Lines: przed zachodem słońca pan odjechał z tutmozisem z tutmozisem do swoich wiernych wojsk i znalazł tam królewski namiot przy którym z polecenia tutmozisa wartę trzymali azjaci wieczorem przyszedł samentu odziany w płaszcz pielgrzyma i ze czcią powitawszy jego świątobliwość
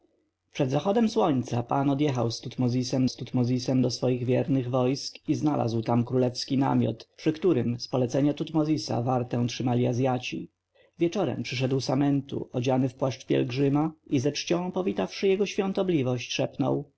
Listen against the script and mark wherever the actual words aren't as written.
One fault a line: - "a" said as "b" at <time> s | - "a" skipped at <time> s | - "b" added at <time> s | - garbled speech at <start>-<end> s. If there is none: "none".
none